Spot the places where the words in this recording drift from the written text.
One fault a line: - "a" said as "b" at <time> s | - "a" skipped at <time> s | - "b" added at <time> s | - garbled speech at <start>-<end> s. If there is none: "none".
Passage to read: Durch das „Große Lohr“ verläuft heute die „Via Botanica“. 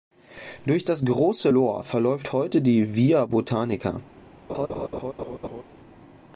none